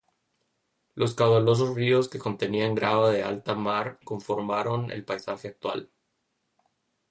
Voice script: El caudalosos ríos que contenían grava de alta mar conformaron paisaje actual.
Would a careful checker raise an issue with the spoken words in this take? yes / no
yes